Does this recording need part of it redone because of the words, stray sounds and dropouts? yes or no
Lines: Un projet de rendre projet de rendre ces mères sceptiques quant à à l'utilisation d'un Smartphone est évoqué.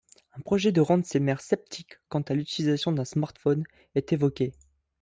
yes